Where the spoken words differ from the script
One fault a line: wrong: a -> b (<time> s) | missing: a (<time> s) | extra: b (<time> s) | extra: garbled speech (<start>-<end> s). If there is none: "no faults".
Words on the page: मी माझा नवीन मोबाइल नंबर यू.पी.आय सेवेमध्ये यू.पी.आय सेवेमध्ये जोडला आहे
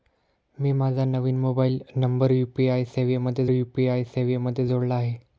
no faults